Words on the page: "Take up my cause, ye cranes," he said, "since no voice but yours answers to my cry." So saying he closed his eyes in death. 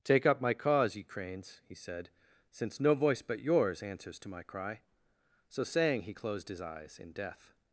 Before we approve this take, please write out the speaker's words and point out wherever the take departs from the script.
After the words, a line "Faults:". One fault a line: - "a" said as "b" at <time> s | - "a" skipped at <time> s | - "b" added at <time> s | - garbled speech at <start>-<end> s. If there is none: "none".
"Take up my cause, ye cranes," he said, "since no voice but yours answers to my cry." So saying he closed his eyes in death.
Faults:
none